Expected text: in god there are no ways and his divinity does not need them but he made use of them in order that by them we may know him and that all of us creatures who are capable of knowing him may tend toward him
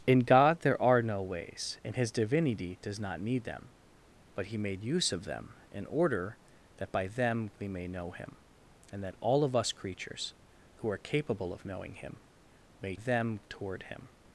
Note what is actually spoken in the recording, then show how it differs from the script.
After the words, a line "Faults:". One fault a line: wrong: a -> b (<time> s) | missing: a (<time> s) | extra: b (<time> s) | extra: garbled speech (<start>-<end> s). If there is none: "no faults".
in god there are no ways and his divinity does not need them but he made use of them in order that by them we may know him and that all of us creatures who are capable of knowing him may them toward him
Faults:
wrong: tend -> them (12.9 s)